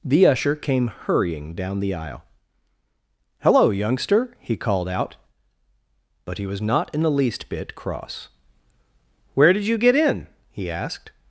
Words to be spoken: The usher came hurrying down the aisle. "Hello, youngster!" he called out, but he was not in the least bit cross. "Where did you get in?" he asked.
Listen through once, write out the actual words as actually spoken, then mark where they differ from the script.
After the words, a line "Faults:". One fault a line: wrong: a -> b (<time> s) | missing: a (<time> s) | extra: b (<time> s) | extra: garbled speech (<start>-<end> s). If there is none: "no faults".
The usher came hurrying down the aisle. "Hello, youngster!" he called out, but he was not in the least bit cross. "Where did you get in?" he asked.
Faults:
no faults